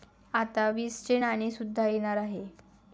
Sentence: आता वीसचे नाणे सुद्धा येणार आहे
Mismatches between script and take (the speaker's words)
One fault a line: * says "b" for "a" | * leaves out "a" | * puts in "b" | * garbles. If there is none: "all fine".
all fine